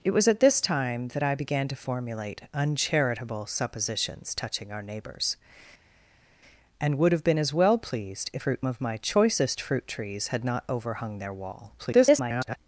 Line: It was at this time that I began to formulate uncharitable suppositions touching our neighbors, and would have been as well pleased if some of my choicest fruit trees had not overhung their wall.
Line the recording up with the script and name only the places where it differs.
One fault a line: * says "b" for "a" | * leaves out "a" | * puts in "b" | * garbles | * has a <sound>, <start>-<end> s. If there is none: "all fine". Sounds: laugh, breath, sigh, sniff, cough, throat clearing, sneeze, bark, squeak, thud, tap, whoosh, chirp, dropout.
* says "fruit" for "some"
* garbles